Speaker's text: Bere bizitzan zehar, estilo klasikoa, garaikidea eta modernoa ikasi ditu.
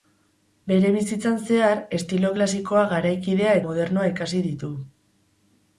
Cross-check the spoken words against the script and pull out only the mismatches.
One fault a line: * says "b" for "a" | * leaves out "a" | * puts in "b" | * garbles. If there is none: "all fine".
* leaves out "eta"